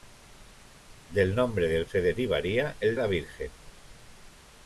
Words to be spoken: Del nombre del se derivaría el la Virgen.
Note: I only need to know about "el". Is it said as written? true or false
true